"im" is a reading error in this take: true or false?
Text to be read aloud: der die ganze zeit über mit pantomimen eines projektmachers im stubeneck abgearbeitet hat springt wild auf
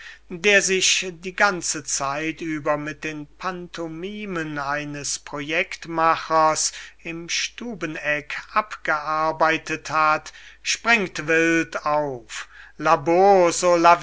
false